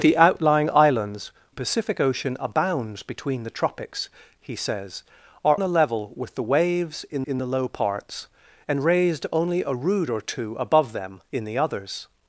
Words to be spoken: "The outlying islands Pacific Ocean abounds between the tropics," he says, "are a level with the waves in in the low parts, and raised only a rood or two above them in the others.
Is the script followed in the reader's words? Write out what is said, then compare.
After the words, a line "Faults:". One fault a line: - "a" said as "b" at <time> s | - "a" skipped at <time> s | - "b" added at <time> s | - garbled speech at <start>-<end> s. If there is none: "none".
"The outlying islands Pacific Ocean abounds between the tropics," he says, "are a level with the waves in in the low parts, and raised only a rood or two above them in the others.
Faults:
none